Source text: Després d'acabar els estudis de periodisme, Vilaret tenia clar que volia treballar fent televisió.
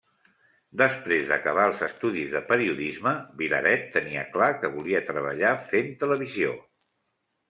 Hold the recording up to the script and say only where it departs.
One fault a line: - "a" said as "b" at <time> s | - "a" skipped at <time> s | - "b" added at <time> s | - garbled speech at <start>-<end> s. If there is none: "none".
none